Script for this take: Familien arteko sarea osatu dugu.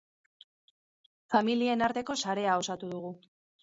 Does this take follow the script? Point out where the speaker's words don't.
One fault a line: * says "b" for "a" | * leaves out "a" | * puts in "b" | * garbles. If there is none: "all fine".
all fine